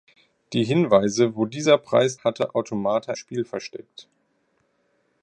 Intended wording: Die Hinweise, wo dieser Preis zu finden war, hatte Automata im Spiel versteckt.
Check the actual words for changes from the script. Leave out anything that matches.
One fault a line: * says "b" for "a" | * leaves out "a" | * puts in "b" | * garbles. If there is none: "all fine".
* leaves out "zu finden war"
* leaves out "im"